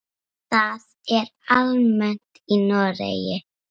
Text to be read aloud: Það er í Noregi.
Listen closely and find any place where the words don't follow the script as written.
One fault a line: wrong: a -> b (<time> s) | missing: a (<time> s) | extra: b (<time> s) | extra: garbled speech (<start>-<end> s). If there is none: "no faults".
extra: almennt (1.6 s)